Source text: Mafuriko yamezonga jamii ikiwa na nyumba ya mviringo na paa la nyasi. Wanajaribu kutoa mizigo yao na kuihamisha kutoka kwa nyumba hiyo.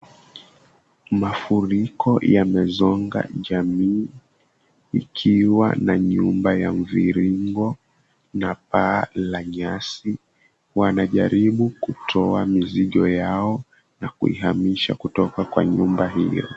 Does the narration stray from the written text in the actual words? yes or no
no